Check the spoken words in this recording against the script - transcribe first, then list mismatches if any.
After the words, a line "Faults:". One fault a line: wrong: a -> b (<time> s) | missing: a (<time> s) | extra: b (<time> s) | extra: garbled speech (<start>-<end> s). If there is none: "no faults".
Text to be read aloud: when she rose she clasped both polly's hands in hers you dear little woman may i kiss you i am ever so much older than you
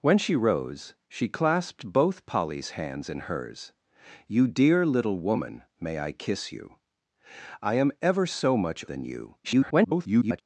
when she rose she clasped both polly's hands in hers you dear little woman may i kiss you i am ever so much than you [garbled]
Faults:
missing: older (8.8 s)
extra: garbled speech (9.4-10.4 s)